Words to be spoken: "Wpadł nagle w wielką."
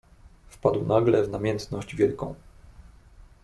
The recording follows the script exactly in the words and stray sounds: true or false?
false